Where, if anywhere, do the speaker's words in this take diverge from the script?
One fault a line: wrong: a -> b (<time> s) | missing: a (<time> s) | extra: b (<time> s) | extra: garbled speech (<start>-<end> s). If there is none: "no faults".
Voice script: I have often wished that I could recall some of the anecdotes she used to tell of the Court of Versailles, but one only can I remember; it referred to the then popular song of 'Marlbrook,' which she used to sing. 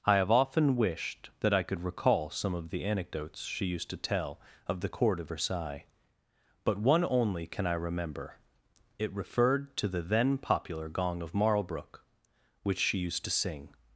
wrong: song -> gong (10.9 s)